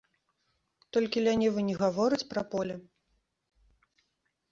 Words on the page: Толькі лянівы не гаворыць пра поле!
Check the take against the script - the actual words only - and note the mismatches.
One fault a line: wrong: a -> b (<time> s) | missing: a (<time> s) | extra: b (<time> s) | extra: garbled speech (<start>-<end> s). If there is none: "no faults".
no faults